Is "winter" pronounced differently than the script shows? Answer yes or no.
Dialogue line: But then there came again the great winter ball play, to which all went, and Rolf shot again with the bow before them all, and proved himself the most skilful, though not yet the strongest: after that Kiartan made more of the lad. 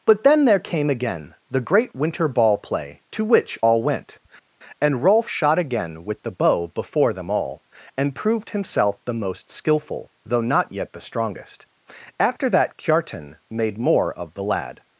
no